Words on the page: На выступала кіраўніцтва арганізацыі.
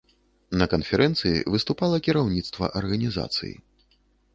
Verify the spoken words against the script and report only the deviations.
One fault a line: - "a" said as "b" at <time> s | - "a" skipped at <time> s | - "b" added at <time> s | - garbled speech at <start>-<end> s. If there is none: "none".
- "канферэнцыі" added at 0.7 s